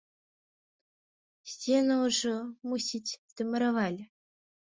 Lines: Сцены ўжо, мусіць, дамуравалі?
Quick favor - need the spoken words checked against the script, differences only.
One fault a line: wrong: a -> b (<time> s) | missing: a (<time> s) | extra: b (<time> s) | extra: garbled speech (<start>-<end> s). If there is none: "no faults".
no faults